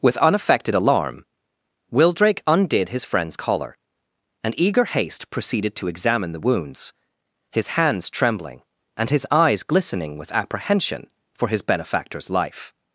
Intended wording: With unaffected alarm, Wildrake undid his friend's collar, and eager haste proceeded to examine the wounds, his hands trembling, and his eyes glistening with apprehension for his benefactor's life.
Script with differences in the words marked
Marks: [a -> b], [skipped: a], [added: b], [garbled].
With unaffected alarm, Wildrake undid his friend's collar, and eager haste proceeded to examine the wounds, his hands trembling, and his eyes glistening with apprehension for his benefactor's life.